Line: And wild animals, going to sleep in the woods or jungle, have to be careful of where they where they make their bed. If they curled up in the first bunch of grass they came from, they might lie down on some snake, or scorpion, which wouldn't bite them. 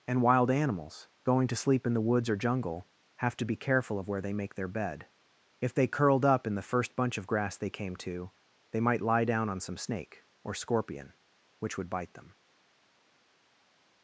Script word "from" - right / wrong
wrong